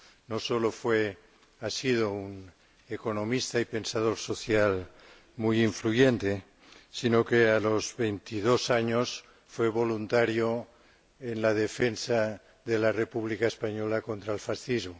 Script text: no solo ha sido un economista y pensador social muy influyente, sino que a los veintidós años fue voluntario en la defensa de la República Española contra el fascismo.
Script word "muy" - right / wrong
right